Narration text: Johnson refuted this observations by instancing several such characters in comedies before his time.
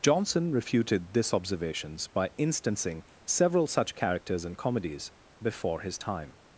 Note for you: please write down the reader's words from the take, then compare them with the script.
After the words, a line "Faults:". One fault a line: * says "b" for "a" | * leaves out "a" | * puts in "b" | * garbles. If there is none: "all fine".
Johnson refuted this observations by instancing several such characters in comedies before his time.
Faults:
all fine